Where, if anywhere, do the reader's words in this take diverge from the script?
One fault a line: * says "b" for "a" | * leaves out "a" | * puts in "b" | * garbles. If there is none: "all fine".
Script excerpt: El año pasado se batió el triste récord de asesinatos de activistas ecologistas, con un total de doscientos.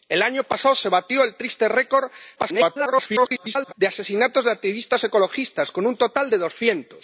* garbles